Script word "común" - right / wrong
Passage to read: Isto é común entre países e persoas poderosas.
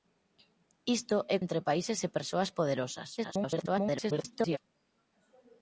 wrong